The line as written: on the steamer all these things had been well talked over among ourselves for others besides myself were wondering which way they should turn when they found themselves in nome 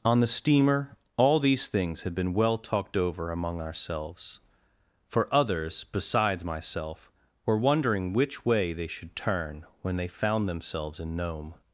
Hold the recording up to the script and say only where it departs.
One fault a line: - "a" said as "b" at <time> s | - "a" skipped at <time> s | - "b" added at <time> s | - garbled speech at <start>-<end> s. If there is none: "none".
none